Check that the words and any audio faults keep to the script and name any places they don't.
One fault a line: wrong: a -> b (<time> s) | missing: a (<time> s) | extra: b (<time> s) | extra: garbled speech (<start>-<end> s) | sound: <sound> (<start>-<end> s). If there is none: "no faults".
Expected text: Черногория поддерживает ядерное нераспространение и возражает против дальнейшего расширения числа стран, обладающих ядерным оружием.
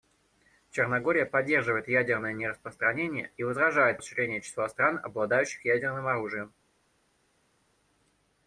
missing: против дальнейшего (4.0 s)